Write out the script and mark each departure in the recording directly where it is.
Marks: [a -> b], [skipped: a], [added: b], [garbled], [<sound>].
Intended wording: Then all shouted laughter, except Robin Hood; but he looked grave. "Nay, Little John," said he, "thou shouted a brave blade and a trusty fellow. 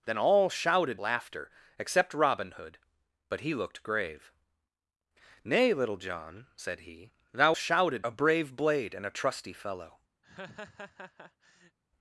Then all shouted laughter, except Robin Hood; but he looked grave. "Nay, Little John," said he, "thou shouted a brave blade and a trusty fellow. [laugh]